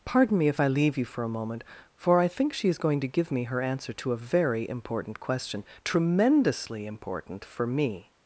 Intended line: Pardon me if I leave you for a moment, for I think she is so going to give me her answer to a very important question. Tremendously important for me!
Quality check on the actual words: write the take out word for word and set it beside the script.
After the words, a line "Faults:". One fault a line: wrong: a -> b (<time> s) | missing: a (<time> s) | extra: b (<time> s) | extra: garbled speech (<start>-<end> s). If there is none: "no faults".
Pardon me if I leave you for a moment, for I think she is going to give me her answer to a very important question. Tremendously important for me!
Faults:
missing: so (2.8 s)